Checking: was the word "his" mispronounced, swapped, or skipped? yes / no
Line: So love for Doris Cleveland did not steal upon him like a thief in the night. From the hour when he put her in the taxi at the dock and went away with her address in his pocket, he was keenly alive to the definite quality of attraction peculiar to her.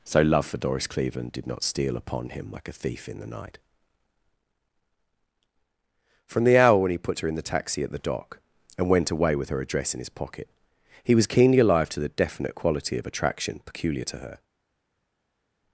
no